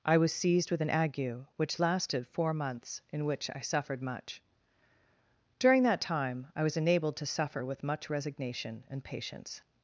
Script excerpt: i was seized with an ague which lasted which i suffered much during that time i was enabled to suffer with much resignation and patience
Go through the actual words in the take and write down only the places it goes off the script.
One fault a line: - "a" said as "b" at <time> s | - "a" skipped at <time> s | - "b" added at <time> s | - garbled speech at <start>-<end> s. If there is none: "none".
- "four months in" added at 2.2 s